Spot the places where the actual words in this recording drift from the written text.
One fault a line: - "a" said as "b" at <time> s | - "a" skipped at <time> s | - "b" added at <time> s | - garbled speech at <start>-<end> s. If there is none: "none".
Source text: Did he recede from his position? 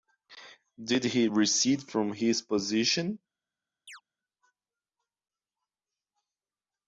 none